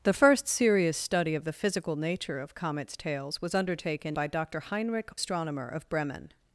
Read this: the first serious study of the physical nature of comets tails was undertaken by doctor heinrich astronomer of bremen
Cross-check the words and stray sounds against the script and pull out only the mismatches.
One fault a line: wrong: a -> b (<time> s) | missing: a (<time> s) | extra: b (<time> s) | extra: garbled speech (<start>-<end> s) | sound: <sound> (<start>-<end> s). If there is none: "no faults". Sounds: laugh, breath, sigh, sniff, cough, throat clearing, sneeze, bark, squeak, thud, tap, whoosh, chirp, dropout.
no faults